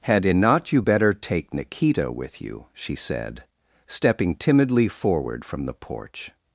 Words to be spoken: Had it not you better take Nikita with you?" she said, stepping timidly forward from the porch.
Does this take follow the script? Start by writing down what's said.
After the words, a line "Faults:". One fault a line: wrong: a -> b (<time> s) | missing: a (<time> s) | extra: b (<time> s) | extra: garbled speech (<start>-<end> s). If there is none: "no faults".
Had it not you better take Nikita with you?" she said, stepping timidly forward from the porch.
Faults:
no faults